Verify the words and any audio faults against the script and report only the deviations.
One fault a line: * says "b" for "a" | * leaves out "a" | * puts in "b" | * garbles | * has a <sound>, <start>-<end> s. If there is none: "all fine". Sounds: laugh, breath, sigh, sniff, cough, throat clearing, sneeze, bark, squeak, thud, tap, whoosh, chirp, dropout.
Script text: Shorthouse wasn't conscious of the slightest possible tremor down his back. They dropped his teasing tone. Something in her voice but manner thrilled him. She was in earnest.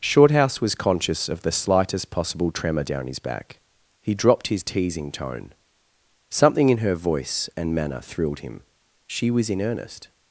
* says "was" for "wasn't"
* says "He" for "They"
* says "and" for "but"